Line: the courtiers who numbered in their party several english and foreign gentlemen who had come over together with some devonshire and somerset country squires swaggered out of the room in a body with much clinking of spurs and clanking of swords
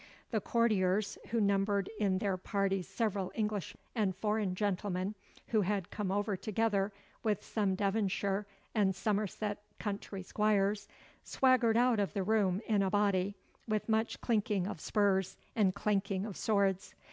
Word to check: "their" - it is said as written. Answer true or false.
true